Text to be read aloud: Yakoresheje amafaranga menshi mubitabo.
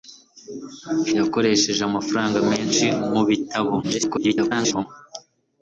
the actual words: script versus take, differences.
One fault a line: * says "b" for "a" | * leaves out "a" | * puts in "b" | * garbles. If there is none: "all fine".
* garbles